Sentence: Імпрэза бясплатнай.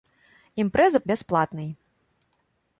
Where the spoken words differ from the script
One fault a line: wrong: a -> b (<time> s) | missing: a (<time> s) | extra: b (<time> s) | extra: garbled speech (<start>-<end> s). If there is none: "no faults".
no faults